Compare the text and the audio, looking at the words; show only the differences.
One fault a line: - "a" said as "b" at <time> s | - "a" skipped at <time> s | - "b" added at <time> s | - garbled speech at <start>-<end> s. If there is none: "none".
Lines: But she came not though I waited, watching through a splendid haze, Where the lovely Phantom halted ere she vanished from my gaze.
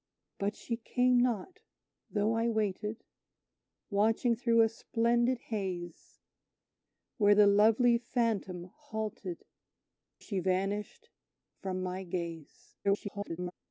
- "ere" skipped at 9.4 s
- garbled speech at 12.8-13.5 s